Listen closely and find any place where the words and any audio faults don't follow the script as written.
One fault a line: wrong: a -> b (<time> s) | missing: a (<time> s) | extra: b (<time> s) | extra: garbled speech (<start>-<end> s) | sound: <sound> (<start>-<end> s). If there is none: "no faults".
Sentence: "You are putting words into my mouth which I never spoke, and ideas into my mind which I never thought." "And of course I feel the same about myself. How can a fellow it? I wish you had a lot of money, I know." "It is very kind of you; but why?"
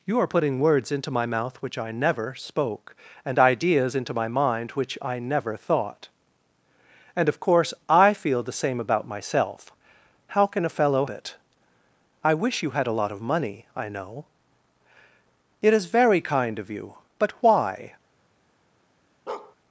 sound: bark (19.3-19.6 s)